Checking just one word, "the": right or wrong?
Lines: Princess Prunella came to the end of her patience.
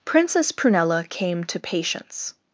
wrong